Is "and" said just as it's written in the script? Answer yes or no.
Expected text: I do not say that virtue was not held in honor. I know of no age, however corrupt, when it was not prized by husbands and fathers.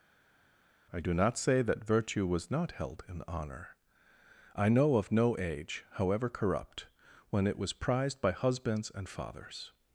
yes